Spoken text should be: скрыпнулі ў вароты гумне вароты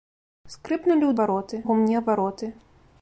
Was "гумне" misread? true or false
false